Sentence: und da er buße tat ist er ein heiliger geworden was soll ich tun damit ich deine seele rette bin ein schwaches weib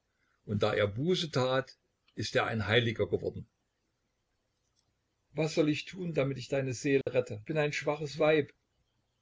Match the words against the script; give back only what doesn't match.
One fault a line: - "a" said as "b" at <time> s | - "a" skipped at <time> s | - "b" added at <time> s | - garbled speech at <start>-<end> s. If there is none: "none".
none